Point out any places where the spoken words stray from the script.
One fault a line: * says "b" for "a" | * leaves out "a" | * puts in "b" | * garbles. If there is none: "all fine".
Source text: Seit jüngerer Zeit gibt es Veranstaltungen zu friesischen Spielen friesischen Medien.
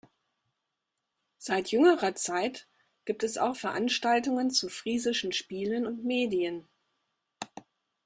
* puts in "auch"
* says "und" for "friesischen"